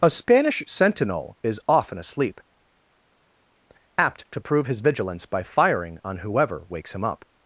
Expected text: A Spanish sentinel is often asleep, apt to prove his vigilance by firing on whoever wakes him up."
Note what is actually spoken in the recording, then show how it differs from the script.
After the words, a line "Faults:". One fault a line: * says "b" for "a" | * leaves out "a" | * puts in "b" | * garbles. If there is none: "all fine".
A Spanish sentinel is often asleep, apt to prove his vigilance by firing on whoever wakes him up."
Faults:
all fine